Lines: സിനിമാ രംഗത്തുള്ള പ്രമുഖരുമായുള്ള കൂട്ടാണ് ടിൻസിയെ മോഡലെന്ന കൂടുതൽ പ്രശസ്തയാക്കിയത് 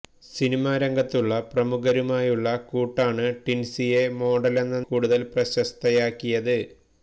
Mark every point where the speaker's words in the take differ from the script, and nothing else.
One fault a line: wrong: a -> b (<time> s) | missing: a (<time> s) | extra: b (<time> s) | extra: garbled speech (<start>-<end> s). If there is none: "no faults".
no faults